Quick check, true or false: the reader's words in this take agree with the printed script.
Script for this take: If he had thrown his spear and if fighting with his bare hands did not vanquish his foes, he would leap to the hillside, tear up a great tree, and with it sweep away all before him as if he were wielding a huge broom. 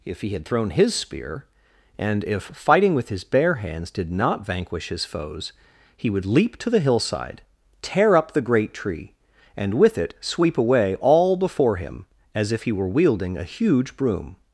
false